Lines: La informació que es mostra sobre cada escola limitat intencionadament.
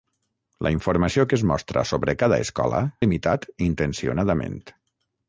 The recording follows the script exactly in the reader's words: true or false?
true